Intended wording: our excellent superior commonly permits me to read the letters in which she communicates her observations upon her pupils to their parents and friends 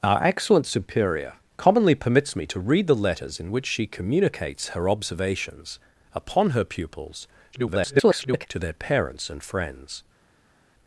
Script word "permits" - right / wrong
right